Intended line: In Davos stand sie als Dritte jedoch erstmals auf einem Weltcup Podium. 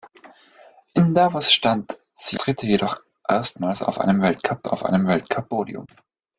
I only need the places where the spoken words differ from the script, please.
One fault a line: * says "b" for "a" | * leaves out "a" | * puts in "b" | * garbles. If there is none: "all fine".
* leaves out "als"
* puts in "auf einem Weltcup"